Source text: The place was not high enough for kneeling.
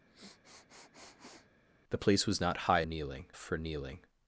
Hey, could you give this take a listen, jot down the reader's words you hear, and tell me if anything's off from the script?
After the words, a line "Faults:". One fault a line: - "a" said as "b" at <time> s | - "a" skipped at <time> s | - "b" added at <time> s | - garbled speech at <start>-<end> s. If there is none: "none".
The place was not high kneeling for kneeling.
Faults:
- "enough" said as "kneeling" at 2.8 s